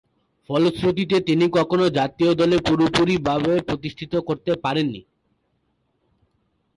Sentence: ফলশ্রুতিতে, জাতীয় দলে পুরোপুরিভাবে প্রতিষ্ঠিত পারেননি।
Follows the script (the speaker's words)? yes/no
no